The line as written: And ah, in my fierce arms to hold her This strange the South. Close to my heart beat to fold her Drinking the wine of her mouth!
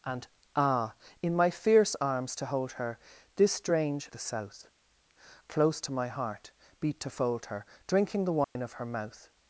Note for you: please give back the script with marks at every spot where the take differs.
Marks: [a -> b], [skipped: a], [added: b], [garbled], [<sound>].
And ah, in my fierce arms to hold her This strange the South. Close to my heart beat to fold her Drinking the wine [dropout] of her mouth!